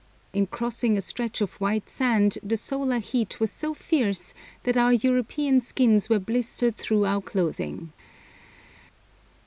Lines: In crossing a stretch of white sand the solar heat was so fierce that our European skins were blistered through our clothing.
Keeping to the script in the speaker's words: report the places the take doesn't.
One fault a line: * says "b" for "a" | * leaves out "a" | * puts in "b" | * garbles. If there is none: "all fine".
all fine